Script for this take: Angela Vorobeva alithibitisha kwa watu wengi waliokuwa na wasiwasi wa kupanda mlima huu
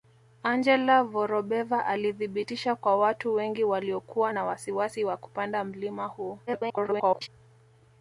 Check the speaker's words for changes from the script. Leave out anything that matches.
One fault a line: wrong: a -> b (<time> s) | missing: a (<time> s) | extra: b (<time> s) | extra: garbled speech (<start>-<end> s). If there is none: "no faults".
extra: garbled speech (6.5-7.3 s)